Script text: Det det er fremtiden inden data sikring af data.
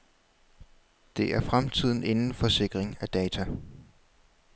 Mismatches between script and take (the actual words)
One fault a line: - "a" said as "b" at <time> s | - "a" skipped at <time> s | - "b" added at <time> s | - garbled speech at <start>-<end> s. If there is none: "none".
- "det" skipped at 1.3 s
- "data" said as "for" at 2.3 s